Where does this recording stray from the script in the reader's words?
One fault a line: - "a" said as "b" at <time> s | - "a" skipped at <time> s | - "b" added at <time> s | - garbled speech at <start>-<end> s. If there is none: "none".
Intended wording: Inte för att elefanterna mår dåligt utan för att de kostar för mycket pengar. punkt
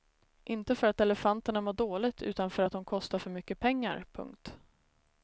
none